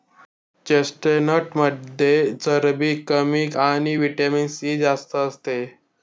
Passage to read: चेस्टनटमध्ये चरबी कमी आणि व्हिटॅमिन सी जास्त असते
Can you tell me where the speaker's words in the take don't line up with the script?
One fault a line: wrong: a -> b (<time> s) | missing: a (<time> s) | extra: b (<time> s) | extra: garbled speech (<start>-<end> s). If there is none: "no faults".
no faults